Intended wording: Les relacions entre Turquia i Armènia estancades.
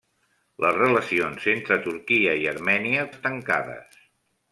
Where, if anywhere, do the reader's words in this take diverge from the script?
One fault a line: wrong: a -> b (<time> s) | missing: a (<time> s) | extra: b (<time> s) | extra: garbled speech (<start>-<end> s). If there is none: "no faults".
no faults